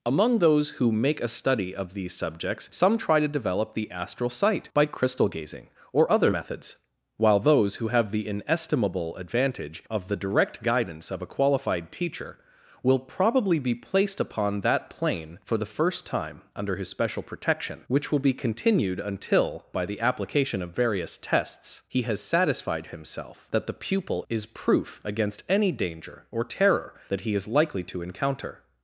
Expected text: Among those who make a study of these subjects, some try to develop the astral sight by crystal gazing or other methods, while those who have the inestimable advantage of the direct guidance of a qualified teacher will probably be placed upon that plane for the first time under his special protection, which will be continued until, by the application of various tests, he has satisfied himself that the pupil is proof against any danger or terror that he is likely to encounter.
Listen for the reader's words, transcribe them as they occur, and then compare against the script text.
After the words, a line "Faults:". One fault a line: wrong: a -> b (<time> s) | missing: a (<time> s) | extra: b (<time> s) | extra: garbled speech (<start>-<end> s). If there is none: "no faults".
Among those who make a study of these subjects, some try to develop the astral sight by crystal gazing or other methods, while those who have the inestimable advantage of the direct guidance of a qualified teacher will probably be placed upon that plane for the first time under his special protection, which will be continued until, by the application of various tests, he has satisfied himself that the pupil is proof against any danger or terror that he is likely to encounter.
Faults:
no faults